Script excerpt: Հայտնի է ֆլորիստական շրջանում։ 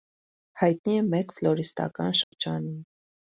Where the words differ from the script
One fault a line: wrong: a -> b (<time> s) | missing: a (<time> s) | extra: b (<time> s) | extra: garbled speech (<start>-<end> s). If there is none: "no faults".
extra: մեկ (1.1 s)